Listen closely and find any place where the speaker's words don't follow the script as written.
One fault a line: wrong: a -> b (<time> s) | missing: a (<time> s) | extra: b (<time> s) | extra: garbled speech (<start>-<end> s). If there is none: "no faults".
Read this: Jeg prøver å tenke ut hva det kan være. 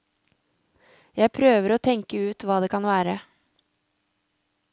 no faults